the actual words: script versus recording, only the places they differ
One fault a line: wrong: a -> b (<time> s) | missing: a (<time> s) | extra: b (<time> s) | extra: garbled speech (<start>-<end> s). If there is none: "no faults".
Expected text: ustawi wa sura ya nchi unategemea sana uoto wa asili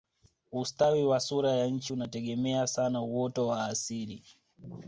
no faults